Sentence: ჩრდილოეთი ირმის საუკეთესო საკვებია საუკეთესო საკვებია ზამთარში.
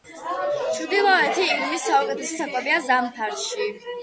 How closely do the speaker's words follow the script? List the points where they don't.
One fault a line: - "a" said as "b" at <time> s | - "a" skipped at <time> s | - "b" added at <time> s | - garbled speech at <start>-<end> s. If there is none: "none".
- "საუკეთესო საკვებია" skipped at 2.8 s